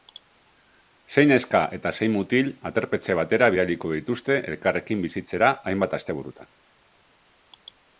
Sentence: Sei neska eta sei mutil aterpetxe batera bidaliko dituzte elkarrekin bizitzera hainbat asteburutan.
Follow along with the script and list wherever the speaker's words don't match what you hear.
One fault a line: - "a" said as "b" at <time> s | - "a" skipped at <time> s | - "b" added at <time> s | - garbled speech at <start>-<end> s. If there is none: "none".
none